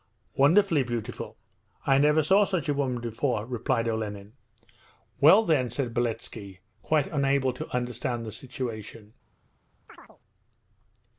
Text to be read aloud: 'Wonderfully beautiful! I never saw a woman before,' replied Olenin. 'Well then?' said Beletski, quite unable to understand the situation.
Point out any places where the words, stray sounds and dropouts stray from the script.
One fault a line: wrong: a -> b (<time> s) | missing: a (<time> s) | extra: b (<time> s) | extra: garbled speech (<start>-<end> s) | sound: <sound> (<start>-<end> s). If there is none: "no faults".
extra: such (2.4 s)
sound: chirp (9.9-10.2 s)